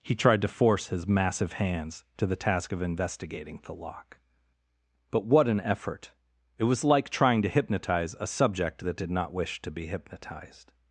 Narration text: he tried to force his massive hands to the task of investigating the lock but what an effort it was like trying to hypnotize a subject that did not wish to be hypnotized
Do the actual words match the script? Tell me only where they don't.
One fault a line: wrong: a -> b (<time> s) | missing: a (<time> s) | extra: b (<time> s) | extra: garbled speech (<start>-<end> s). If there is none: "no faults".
no faults